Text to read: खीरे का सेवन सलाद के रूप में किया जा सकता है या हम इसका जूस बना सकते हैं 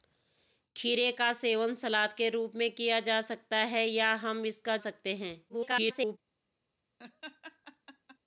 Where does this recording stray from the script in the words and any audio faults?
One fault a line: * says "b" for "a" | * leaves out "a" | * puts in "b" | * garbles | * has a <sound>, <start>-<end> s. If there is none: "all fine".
* leaves out "जूस बना"
* garbles
* has a laugh, 7.0-8.2 s